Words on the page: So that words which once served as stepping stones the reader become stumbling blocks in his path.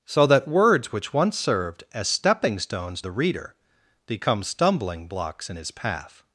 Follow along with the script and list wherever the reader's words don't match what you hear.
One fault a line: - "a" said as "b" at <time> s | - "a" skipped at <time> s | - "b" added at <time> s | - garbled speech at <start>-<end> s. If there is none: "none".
none